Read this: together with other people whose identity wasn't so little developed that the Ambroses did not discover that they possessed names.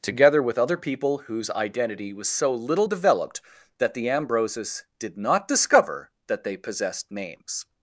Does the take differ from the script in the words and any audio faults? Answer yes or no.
yes